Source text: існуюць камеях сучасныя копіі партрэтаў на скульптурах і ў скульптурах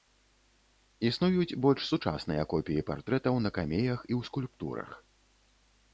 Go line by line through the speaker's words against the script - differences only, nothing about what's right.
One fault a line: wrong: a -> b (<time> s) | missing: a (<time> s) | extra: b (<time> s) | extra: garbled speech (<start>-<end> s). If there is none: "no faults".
wrong: камеях -> больш (1.6 s)
wrong: скульптурах -> камеях (3.6 s)